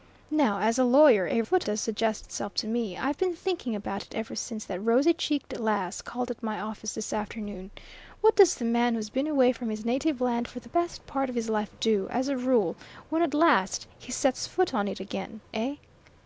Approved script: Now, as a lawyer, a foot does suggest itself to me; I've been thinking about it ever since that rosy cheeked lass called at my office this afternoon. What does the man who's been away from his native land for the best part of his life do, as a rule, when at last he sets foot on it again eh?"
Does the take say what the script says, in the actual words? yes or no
yes